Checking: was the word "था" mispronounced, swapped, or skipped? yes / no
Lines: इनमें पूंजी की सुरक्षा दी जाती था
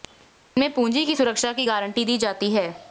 yes